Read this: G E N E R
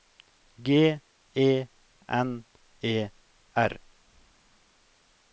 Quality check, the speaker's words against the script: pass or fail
pass